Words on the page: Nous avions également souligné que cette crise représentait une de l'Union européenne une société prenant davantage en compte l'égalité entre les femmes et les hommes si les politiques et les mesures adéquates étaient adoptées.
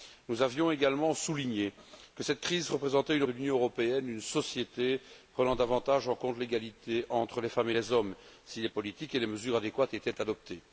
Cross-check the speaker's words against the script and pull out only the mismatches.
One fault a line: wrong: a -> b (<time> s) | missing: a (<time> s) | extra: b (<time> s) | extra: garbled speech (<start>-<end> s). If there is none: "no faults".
no faults